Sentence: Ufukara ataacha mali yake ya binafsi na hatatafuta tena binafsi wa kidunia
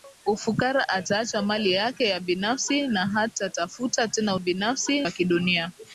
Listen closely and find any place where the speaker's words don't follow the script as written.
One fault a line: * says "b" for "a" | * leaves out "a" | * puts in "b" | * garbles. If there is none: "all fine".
all fine